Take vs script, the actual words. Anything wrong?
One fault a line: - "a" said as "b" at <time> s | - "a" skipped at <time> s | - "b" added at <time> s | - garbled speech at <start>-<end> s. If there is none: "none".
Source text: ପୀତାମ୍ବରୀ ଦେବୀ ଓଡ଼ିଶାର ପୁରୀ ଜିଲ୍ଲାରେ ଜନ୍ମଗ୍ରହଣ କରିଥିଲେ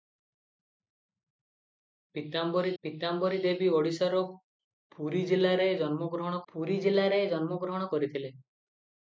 - "ପୀତାମ୍ବରୀ" added at 2.8 s
- "ପୁରୀ ଜିଲ୍ଲାରେ ଜନ୍ମଗ୍ରହଣ" added at 6.5 s